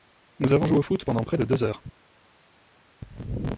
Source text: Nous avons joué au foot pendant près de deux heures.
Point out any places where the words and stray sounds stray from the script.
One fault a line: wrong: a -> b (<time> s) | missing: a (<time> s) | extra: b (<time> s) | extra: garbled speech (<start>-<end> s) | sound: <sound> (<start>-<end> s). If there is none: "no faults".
no faults